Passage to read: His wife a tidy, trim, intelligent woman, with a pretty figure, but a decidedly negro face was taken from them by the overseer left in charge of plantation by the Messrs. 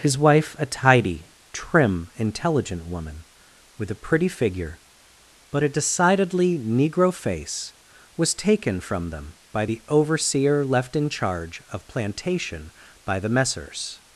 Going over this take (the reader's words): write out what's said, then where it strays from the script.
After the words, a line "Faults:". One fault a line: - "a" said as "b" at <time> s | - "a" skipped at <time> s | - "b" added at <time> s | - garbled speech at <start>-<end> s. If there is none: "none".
His wife a tidy, trim, intelligent woman, with a pretty figure, but a decidedly negro face was taken from them by the overseer left in charge of plantation by the Messrs.
Faults:
none